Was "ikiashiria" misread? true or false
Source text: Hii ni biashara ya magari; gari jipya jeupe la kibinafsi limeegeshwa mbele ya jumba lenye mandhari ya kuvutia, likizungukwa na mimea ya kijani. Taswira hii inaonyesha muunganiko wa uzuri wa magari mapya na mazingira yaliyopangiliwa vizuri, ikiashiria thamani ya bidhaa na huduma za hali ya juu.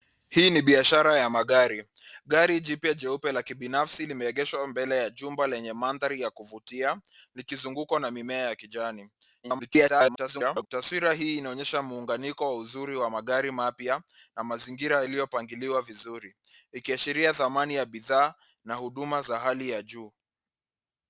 false